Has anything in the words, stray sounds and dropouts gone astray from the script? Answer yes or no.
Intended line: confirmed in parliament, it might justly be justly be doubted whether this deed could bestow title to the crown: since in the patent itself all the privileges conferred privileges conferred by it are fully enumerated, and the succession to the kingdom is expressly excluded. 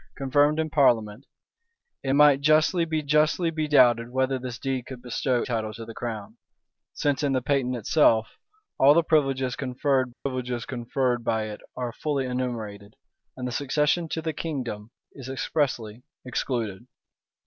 yes